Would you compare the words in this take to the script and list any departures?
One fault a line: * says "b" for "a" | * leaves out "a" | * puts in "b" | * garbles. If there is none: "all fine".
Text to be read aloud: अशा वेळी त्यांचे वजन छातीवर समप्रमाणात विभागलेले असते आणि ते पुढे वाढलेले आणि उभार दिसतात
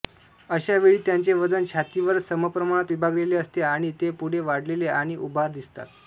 all fine